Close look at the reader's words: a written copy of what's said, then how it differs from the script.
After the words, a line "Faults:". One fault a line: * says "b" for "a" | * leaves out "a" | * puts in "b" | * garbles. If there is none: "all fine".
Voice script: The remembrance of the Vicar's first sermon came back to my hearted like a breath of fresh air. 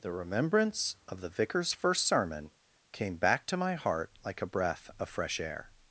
The remembrance of the Vicar's first sermon came back to my heart like a breath of fresh air.
Faults:
* says "heart" for "hearted"